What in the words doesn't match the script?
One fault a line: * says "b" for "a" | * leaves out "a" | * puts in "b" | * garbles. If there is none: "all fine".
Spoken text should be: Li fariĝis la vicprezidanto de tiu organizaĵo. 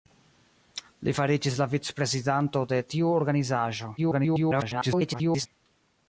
* garbles